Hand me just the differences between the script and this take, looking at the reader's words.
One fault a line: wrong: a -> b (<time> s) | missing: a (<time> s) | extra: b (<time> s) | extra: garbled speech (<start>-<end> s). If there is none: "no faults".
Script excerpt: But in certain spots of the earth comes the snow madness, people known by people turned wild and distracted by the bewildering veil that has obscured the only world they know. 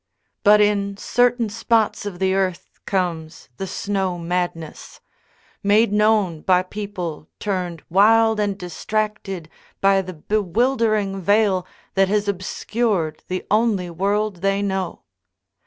wrong: people -> made (5.6 s)